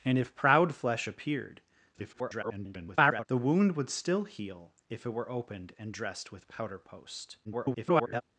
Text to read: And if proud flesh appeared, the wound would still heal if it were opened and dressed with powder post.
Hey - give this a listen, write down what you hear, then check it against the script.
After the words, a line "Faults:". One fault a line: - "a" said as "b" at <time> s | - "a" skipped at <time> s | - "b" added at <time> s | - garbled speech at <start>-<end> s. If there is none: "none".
And if proud flesh appeared, [garbled] the wound would still heal if it were opened and dressed with powder post. [garbled]
Faults:
- garbled speech at 1.9-3.3 s
- garbled speech at 7.4-8.2 s